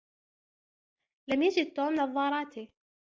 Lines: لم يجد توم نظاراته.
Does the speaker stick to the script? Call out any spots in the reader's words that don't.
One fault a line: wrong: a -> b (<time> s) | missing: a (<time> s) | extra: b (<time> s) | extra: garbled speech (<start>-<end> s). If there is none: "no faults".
no faults